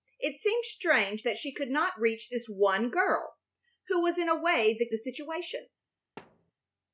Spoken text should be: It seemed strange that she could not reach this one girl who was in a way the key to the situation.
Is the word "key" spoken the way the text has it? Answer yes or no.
no